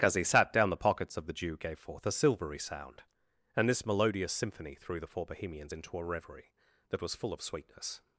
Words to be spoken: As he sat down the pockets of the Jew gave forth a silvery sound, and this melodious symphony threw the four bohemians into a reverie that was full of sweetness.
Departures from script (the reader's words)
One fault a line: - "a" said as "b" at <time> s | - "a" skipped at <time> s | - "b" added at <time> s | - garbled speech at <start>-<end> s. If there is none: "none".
none